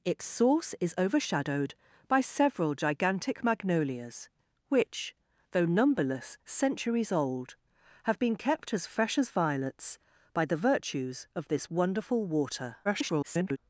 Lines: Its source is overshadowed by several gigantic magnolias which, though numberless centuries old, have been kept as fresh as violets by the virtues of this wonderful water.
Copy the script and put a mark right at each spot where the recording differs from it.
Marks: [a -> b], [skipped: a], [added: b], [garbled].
Its source is overshadowed by several gigantic magnolias which, though numberless centuries old, have been kept as fresh as violets by the virtues of this wonderful water. [garbled]